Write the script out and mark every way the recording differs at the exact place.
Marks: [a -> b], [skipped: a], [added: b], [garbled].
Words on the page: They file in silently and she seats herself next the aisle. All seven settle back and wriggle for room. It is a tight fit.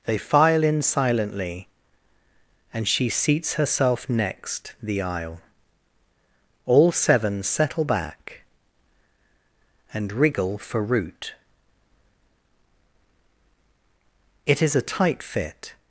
They file in silently and she seats herself next the aisle. All seven settle back and wriggle for [room. -> root] It is a tight fit.